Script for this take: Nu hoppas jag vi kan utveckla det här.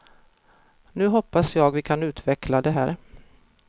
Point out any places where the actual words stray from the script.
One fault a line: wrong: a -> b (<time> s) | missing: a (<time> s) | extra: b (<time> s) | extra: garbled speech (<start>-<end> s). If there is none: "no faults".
no faults